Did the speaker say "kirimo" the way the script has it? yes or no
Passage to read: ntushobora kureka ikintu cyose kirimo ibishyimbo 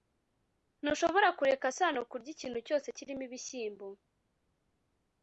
yes